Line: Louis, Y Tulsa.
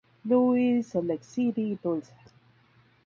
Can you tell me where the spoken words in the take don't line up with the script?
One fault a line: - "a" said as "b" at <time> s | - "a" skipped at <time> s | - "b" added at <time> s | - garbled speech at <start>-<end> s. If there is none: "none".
- "Salt Lake City" added at 0.8 s